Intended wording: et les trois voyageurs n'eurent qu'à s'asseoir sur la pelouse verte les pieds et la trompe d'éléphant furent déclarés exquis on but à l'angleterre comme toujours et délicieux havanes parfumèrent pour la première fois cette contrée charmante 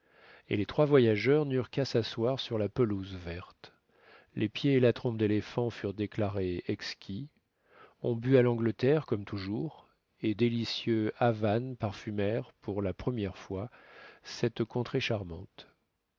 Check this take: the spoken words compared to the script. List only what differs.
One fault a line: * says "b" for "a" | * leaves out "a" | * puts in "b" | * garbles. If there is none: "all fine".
all fine